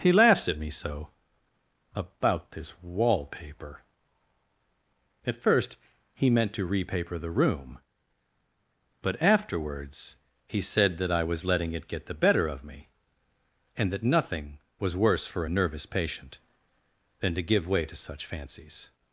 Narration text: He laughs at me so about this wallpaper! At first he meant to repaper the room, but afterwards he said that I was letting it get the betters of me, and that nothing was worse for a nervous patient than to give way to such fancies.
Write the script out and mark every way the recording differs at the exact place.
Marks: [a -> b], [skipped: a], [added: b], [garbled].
He laughs at me so about this wallpaper! At first he meant to repaper the room, but afterwards he said that I was letting it get the [betters -> better] of me, and that nothing was worse for a nervous patient than to give way to such fancies.